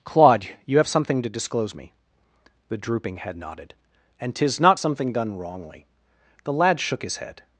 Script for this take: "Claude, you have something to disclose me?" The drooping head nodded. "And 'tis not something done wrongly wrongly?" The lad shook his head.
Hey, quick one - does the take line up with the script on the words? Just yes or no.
no